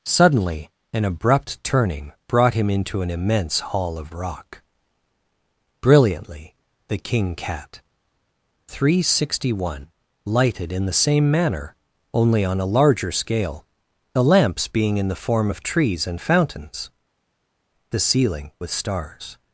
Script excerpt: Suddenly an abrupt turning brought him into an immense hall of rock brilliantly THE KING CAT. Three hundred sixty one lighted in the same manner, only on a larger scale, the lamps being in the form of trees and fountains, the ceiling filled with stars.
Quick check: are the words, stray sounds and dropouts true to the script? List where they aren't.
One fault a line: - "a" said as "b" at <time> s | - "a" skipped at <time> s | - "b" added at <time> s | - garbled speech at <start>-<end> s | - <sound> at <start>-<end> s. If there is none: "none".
- "filled" skipped at 18.5 s